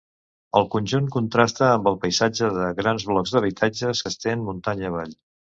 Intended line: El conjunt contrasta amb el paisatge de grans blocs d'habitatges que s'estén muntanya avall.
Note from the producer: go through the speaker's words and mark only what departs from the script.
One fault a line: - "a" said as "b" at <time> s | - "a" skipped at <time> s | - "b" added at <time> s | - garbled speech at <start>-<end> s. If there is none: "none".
- "que" skipped at 4.0 s